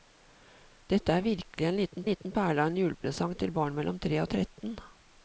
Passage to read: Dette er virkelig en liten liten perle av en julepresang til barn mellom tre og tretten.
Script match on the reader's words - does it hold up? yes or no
yes